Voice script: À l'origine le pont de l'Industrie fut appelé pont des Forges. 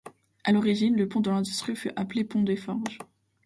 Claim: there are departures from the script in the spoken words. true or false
false